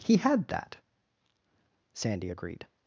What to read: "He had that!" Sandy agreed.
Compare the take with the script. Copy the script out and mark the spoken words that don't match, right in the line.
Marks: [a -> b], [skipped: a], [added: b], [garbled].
"He had that!" Sandy agreed.